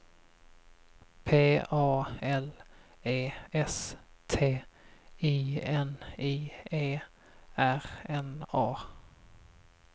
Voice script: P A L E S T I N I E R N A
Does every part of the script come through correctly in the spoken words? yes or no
yes